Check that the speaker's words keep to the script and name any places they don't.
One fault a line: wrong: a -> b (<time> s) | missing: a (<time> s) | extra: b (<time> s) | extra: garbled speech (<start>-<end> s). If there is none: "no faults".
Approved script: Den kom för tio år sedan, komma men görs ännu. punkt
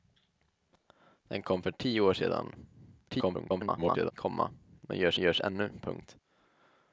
extra: garbled speech (3.1-4.1 s)
extra: görs (5.2 s)